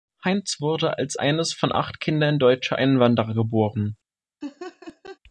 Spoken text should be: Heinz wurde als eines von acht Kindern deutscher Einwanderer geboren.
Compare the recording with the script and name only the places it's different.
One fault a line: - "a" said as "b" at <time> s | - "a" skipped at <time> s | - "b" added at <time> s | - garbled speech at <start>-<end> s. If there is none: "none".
none